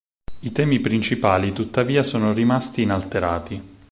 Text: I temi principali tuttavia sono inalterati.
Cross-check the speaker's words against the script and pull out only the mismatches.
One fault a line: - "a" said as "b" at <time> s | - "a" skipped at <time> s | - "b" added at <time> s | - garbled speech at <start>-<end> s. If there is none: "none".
- "rimasti" added at 2.3 s